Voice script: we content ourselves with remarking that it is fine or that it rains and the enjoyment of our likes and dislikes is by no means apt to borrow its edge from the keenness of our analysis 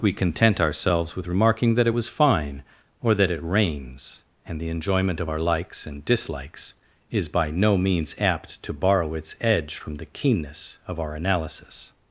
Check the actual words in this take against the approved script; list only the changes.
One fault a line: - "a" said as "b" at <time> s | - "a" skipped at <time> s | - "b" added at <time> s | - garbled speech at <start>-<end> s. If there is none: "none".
- "is" said as "was" at 1.9 s